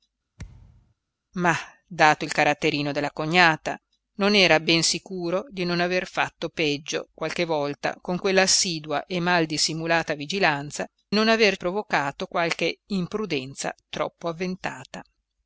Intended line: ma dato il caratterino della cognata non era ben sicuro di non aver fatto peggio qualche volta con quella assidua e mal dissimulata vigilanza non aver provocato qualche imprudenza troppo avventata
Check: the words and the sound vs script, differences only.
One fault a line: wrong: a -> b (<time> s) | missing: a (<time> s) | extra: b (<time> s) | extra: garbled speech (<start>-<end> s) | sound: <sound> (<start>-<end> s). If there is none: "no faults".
sound: thud (0.4-0.9 s)